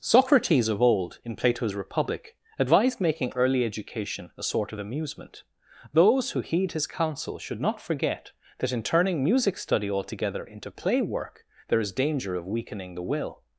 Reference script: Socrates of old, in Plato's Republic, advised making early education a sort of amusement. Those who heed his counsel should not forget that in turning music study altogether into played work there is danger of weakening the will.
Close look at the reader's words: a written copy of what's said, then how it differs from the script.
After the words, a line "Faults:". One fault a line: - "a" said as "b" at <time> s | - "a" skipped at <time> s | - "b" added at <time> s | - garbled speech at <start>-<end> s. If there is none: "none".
Socrates of old, in Plato's Republic, advised making early education a sort of amusement. Those who heed his counsel should not forget that in turning music study altogether into play work there is danger of weakening the will.
Faults:
- "played" said as "play" at 10.7 s